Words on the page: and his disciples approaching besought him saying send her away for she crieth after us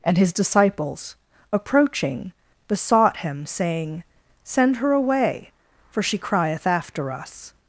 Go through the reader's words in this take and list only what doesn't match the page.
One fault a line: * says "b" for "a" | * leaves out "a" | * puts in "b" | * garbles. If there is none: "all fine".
all fine